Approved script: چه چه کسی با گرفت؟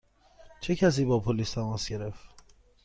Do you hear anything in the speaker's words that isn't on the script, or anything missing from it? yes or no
yes